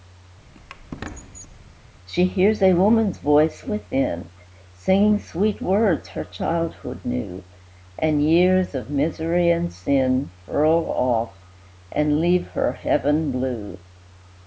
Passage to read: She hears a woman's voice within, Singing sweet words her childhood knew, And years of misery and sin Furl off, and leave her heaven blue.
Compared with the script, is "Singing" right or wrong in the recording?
right